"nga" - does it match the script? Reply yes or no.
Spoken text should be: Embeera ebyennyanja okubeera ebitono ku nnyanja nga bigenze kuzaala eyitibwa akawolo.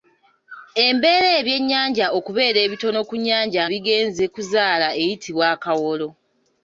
no